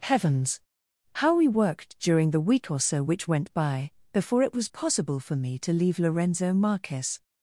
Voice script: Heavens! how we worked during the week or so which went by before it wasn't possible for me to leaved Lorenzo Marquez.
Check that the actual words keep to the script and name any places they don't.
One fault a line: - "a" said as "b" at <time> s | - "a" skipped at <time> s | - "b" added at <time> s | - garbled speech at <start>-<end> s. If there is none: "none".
- "wasn't" said as "was" at 4.5 s
- "leaved" said as "leave" at 5.7 s